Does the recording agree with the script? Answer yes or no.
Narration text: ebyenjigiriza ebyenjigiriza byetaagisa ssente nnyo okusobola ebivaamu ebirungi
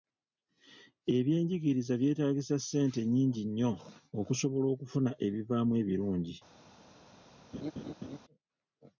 no